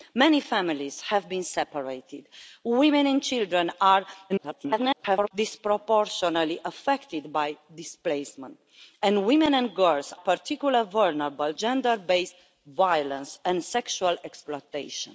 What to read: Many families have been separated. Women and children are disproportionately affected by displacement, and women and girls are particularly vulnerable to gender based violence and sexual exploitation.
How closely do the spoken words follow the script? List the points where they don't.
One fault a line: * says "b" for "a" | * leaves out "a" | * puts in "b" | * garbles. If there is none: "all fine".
* garbles
* leaves out "are"
* leaves out "to"